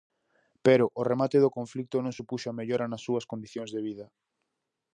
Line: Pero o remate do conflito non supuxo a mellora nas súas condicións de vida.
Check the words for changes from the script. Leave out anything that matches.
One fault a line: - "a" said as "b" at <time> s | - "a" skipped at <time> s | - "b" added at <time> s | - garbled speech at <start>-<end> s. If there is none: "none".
none